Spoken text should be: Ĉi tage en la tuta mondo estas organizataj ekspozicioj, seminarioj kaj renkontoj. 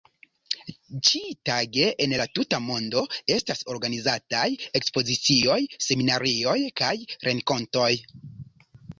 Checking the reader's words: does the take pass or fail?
pass